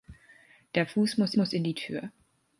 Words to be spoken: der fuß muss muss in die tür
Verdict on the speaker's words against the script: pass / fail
pass